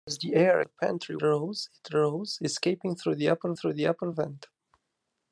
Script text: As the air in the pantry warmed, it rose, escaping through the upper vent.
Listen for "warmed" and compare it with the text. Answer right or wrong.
wrong